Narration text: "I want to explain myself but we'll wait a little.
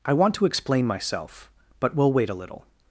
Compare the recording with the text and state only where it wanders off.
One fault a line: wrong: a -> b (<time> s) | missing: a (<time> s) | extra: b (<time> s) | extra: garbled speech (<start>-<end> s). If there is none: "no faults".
no faults